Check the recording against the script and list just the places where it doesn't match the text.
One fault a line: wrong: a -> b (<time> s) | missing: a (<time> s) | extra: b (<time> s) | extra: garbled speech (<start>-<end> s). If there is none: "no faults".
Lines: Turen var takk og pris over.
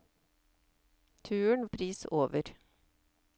missing: var takk (1.7 s)